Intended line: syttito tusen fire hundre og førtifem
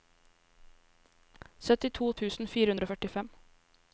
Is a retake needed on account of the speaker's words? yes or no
no